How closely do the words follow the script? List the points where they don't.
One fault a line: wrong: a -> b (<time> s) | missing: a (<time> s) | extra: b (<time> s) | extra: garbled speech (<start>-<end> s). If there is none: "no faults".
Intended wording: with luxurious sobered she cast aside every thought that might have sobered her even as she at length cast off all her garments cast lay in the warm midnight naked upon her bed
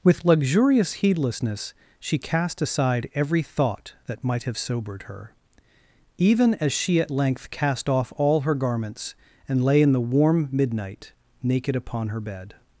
wrong: sobered -> heedlessness (0.9 s)
wrong: cast -> and (9.5 s)